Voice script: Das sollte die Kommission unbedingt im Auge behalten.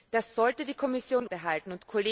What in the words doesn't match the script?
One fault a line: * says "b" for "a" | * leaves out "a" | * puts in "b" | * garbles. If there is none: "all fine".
* leaves out "unbedingt im Auge"